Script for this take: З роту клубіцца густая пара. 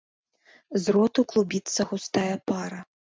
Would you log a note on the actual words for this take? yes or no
no